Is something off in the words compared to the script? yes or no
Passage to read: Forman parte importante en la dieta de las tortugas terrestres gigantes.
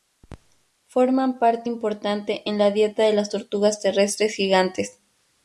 no